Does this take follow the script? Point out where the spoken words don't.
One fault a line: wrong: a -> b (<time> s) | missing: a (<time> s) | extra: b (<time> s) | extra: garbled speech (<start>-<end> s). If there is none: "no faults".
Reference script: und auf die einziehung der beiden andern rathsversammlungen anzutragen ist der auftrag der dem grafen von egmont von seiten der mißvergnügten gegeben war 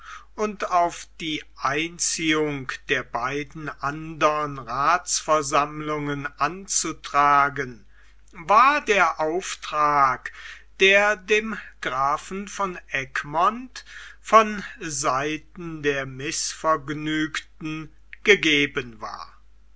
wrong: ist -> war (8.3 s)